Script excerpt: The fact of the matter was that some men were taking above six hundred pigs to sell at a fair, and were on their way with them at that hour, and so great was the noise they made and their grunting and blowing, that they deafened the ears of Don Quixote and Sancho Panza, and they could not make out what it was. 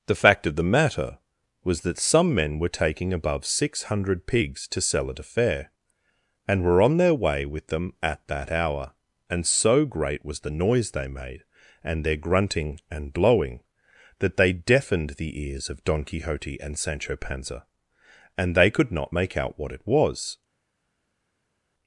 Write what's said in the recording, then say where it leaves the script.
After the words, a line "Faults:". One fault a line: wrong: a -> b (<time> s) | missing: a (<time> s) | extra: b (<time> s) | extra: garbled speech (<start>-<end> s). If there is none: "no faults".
The fact of the matter was that some men were taking above six hundred pigs to sell at a fair, and were on their way with them at that hour, and so great was the noise they made and their grunting and blowing, that they deafened the ears of Don Quixote and Sancho Panza, and they could not make out what it was.
Faults:
no faults